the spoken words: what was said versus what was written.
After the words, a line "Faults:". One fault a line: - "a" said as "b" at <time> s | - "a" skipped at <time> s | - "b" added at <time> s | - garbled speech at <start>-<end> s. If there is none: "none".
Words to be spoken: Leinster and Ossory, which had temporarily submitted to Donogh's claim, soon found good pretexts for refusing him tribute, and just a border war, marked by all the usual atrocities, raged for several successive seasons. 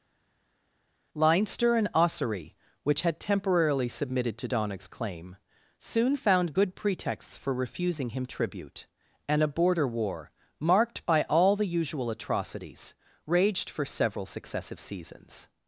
Leinster and Ossory, which had temporarily submitted to Donogh's claim, soon found good pretexts for refusing him tribute, and a border war, marked by all the usual atrocities, raged for several successive seasons.
Faults:
- "just" skipped at 9.4 s